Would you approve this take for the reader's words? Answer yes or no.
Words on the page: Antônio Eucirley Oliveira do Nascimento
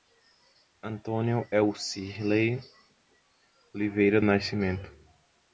no